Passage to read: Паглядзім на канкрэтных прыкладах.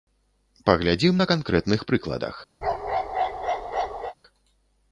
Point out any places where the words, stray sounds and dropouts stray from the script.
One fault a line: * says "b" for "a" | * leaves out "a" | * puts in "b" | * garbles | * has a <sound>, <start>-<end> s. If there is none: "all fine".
* has a bark, 2.6-4.1 s